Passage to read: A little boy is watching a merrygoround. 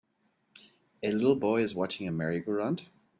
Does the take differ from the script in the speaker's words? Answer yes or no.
no